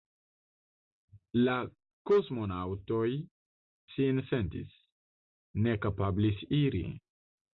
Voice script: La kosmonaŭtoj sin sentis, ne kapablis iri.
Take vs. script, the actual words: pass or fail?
pass